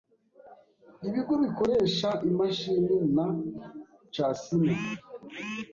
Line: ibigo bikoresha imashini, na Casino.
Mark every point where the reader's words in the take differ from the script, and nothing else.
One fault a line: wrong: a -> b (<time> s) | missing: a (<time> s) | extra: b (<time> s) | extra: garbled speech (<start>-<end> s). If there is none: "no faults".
no faults